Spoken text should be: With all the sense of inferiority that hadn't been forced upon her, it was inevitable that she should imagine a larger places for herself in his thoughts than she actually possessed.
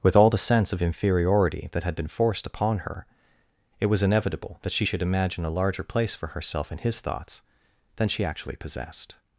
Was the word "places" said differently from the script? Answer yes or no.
yes